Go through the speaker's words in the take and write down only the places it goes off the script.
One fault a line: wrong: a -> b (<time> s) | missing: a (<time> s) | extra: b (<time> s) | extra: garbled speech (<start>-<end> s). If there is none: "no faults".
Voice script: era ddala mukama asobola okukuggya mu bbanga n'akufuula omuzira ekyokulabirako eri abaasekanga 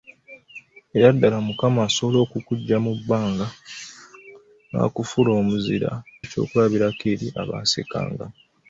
no faults